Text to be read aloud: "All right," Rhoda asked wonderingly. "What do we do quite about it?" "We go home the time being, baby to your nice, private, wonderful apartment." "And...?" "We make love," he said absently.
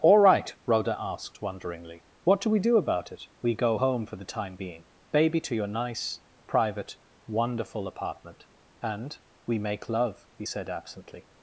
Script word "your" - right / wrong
right